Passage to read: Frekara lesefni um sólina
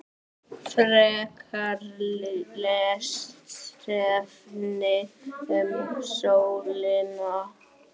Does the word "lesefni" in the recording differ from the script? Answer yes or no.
no